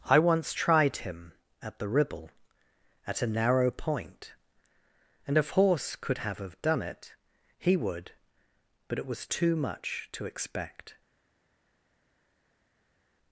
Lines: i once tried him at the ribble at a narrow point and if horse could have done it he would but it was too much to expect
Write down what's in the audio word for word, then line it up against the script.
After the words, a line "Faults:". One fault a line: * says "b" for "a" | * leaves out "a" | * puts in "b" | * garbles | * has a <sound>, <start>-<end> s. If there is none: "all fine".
i once tried him at the ribble at a narrow point and if horse could have have done it he would but it was too much to expect
Faults:
* puts in "have"